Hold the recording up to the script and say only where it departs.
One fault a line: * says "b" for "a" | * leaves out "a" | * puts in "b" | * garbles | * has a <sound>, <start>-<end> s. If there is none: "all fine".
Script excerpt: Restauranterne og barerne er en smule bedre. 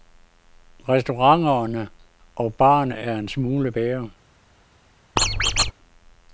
* has a squeak, 5.2-5.7 s